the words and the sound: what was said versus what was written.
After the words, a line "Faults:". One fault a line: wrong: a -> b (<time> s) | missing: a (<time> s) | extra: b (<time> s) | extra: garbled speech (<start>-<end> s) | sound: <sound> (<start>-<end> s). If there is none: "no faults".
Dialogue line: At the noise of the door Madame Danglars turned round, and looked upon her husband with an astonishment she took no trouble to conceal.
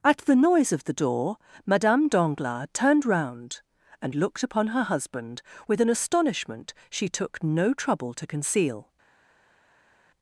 At the noise of the door Madame Danglars turned round, and looked upon her husband with an astonishment she took no trouble to conceal.
Faults:
no faults